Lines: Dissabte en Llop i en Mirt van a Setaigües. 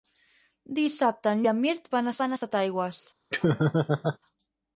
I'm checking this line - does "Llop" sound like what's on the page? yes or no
no